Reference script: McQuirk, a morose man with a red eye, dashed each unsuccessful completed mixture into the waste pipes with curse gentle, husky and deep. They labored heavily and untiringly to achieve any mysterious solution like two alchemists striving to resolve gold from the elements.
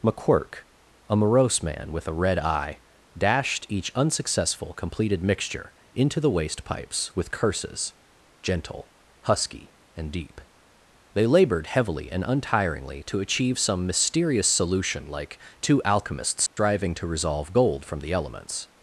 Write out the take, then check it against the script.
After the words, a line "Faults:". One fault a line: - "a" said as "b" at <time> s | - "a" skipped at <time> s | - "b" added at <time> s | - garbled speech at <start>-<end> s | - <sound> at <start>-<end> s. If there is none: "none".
McQuirk, a morose man with a red eye, dashed each unsuccessful completed mixture into the waste pipes with curses gentle, husky and deep. They labored heavily and untiringly to achieve some mysterious solution like two alchemists striving to resolve gold from the elements.
Faults:
- "curse" said as "curses" at 7.3 s
- "any" said as "some" at 13.6 s
- dropout at 16.5-16.6 s